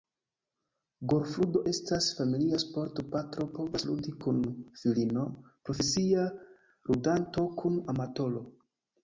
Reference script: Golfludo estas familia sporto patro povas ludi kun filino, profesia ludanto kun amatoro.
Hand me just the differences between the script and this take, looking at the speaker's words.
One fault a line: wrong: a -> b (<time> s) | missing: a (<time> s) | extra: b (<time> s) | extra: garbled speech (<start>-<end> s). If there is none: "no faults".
no faults